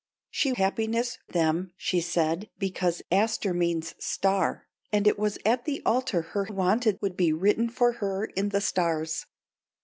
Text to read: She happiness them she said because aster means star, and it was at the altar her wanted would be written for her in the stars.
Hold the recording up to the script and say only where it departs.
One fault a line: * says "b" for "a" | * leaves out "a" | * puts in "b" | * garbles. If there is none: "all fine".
all fine